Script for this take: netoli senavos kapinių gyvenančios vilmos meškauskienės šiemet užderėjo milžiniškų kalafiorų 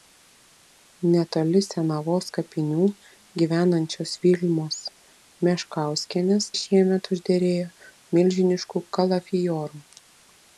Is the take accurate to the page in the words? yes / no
yes